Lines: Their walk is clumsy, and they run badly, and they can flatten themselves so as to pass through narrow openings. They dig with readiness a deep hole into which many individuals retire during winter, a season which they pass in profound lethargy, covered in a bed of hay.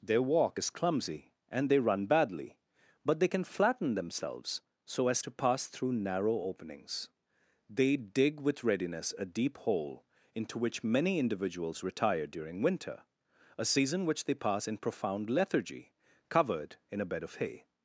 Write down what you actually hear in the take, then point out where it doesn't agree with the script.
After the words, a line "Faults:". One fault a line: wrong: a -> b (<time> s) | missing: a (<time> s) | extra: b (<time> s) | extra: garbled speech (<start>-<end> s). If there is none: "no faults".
Their walk is clumsy, and they run badly, but they can flatten themselves so as to pass through narrow openings. They dig with readiness a deep hole into which many individuals retire during winter, a season which they pass in profound lethargy, covered in a bed of hay.
Faults:
wrong: and -> but (3.0 s)